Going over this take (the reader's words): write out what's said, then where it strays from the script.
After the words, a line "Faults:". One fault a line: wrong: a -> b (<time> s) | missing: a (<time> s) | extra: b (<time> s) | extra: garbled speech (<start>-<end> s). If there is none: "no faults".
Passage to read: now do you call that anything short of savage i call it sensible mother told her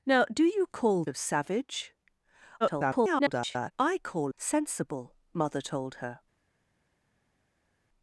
now do you call of savage [garbled] i call sensible mother told her
Faults:
missing: that anything short (1.0 s)
extra: garbled speech (2.6-3.7 s)
missing: it (4.3 s)